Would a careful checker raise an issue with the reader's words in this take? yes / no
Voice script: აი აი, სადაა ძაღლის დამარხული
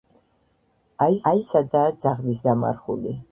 no